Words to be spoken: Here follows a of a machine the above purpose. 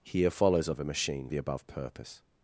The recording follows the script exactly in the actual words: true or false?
true